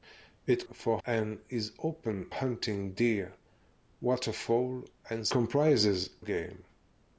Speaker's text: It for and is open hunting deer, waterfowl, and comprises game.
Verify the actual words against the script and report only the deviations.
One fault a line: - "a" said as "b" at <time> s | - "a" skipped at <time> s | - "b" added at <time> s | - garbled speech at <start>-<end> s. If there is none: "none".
none